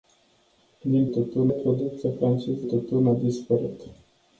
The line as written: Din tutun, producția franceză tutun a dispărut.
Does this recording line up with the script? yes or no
yes